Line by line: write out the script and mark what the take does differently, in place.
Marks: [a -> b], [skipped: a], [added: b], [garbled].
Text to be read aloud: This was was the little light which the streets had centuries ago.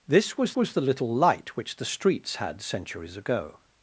This was was the little light which the streets had centuries ago.